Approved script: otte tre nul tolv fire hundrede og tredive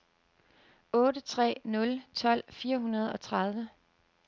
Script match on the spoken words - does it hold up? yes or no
yes